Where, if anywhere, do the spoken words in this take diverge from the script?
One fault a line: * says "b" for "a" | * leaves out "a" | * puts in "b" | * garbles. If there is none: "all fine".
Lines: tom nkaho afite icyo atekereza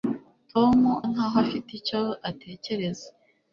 all fine